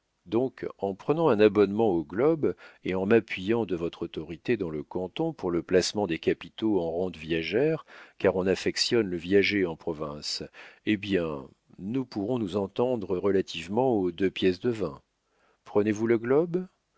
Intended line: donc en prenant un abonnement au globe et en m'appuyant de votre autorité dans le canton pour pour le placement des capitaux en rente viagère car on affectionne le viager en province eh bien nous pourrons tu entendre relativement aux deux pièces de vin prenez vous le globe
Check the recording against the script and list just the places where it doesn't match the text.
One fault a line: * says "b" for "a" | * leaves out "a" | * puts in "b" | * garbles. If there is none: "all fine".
* leaves out "pour"
* says "nous" for "tu"